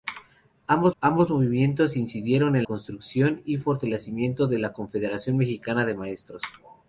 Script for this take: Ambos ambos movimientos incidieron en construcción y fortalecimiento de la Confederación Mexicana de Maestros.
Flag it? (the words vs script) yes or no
no